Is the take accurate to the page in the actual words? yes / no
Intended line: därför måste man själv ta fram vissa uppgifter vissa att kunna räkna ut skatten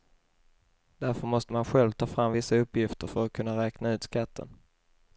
no